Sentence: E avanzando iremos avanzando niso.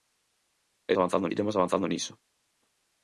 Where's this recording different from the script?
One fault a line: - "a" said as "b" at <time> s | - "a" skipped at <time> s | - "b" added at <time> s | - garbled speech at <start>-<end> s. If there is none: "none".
none